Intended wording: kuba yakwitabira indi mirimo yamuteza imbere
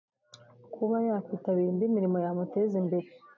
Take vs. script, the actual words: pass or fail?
pass